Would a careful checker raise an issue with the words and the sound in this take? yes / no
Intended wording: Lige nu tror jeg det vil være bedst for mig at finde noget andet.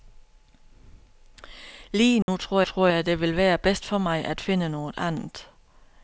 yes